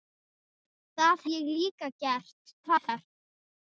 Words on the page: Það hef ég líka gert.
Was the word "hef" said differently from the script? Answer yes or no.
yes